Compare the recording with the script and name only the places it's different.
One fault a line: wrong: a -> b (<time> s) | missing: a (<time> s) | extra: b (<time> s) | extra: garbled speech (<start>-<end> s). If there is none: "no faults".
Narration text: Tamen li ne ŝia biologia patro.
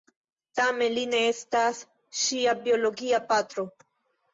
extra: estas (1.3 s)